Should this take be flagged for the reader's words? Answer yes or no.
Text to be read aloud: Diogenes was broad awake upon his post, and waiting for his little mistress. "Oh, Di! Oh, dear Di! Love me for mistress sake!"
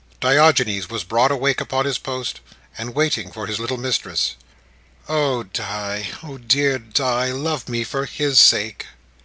yes